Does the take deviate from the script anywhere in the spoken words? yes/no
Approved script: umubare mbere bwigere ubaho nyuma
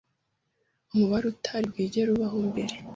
yes